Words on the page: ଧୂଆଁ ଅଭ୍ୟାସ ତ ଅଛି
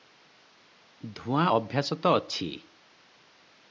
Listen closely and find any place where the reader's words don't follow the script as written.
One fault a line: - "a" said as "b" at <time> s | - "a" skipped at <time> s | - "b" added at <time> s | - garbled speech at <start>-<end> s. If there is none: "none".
none